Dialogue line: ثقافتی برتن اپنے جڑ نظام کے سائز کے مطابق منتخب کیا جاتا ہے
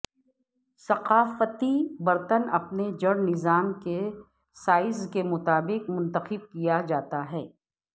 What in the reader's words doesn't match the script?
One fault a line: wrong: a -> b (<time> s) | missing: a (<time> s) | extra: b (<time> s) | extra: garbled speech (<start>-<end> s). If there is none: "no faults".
no faults